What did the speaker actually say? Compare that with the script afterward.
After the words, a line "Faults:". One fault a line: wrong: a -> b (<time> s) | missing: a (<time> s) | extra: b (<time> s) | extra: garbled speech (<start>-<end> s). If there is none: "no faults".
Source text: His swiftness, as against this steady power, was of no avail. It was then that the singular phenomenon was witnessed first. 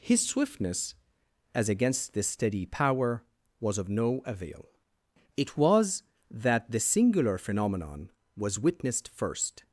His swiftness, as against this steady power, was of no avail. It was that the singular phenomenon was witnessed first.
Faults:
missing: then (6.0 s)